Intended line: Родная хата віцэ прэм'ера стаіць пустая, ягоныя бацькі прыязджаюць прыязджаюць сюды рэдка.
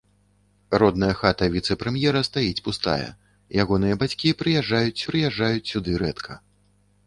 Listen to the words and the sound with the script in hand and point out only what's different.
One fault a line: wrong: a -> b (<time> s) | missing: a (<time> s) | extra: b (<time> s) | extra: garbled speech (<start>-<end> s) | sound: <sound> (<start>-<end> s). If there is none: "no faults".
no faults